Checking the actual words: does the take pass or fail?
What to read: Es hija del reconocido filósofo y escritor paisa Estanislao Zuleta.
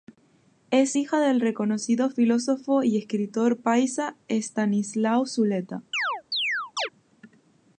pass